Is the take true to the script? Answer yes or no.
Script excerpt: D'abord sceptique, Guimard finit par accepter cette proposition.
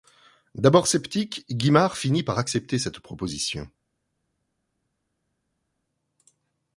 yes